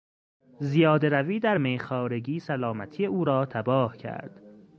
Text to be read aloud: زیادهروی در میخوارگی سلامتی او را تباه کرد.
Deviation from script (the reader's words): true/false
false